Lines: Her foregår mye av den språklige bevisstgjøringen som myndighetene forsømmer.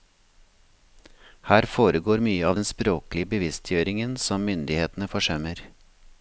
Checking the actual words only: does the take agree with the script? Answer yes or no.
yes